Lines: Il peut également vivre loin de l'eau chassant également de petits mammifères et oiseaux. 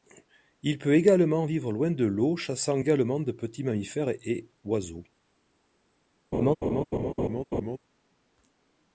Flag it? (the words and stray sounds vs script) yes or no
yes